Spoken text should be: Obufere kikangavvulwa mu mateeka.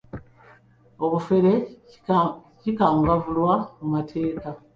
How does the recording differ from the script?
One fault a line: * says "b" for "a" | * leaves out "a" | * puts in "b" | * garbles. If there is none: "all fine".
all fine